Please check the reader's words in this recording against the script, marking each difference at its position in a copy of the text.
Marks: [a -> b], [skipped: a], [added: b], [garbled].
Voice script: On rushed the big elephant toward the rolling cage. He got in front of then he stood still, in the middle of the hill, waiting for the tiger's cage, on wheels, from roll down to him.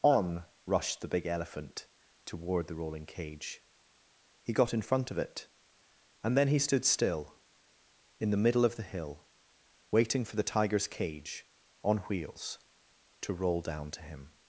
On rushed the big elephant toward the rolling cage. He got in front of [added: it and] then he stood still, in the middle of the hill, waiting for the tiger's cage, on wheels, [from -> to] roll down to him.